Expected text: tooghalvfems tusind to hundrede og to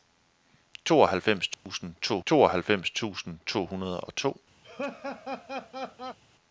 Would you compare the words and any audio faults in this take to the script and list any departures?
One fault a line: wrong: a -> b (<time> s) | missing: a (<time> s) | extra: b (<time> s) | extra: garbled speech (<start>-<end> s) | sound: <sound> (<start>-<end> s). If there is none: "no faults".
sound: dropout (1.5-1.7 s)
extra: tooghalvfems tusind to (2.3 s)
sound: laugh (4.6-6.2 s)